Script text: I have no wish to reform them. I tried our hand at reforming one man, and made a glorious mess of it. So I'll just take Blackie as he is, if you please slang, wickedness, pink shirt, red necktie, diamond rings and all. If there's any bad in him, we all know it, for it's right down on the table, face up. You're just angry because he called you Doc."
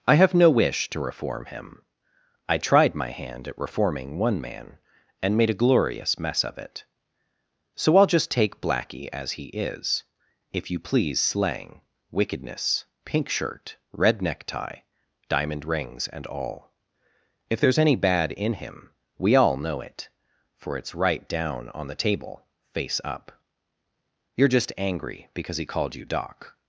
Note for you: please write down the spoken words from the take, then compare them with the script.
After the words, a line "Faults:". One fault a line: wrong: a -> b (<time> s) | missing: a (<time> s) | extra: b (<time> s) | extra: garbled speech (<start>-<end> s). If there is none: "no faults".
I have no wish to reform him. I tried my hand at reforming one man, and made a glorious mess of it. So I'll just take Blackie as he is, if you please slang, wickedness, pink shirt, red necktie, diamond rings and all. If there's any bad in him, we all know it, for it's right down on the table, face up. You're just angry because he called you Doc."
Faults:
wrong: them -> him (1.4 s)
wrong: our -> my (3.0 s)